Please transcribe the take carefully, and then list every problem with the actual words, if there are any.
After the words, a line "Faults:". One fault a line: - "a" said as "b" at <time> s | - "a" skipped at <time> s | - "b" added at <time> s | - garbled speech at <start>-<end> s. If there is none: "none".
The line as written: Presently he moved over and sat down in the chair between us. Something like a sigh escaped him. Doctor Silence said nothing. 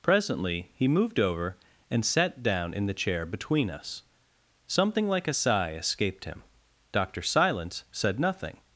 Presently he moved over and sat down in the chair between us. Something like a sigh escaped him. Doctor Silence said nothing.
Faults:
none